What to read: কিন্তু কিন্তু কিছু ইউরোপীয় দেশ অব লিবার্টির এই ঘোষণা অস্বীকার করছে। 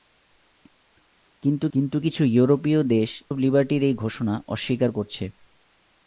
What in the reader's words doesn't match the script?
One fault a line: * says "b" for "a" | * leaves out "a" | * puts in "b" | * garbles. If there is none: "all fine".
all fine